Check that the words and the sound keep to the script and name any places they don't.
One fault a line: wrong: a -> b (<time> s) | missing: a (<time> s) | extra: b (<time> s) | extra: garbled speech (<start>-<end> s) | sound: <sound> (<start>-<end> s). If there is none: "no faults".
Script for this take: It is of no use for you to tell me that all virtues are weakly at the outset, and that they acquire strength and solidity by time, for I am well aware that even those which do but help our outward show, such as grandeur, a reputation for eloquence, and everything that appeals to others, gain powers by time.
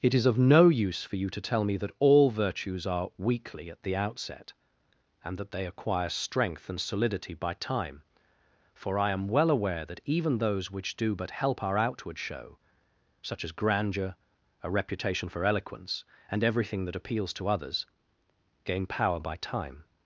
wrong: powers -> power (18.9 s)